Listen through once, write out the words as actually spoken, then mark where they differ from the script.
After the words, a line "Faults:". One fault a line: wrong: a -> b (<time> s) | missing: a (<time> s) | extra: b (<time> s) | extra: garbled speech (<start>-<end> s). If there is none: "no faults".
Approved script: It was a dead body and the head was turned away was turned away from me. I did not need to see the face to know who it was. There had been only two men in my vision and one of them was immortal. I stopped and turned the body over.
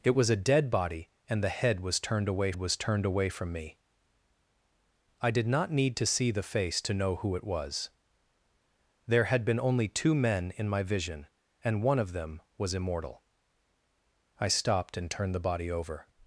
It was a dead body and the head was turned away was turned away from me. I did not need to see the face to know who it was. There had been only two men in my vision and one of them was immortal. I stopped and turned the body over.
Faults:
no faults